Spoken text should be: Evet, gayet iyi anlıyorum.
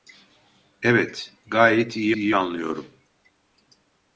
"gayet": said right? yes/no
yes